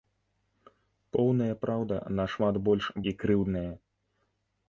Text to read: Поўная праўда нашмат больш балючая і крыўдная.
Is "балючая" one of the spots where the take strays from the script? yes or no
yes